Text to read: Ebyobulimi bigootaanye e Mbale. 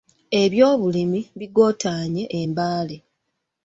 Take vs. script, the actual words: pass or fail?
pass